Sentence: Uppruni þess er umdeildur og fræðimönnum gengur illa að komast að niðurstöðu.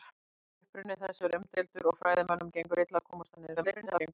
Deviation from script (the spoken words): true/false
true